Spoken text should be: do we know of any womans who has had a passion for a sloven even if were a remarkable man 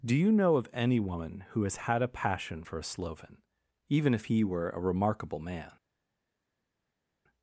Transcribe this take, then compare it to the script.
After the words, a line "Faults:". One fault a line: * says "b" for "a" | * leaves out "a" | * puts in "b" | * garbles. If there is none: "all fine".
do you know of any woman who has had a passion for a sloven even if he were a remarkable man
Faults:
* says "you" for "we"
* says "woman" for "womans"
* puts in "he"